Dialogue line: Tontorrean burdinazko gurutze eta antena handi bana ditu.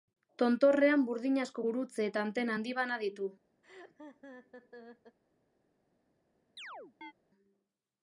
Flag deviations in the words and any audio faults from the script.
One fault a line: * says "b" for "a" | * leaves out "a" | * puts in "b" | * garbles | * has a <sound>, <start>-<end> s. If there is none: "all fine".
* has a laugh, 3.6-5.2 s
* has a chirp, 6.6-7.1 s